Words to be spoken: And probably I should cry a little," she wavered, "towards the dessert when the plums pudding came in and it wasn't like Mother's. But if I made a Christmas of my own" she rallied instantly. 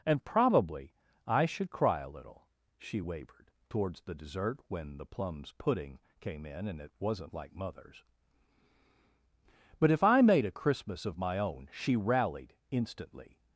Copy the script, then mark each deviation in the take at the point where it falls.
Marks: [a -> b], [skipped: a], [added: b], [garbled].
And probably I should cry a little," she wavered, "towards the dessert when the plums pudding came in and it wasn't like Mother's. But if I made a Christmas of my own" she rallied instantly.